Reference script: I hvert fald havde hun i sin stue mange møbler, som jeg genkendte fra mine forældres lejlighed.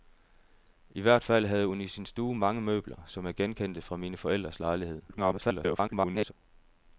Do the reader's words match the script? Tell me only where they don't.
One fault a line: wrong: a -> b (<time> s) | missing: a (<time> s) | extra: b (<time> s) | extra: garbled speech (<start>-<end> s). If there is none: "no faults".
extra: garbled speech (5.1-6.3 s)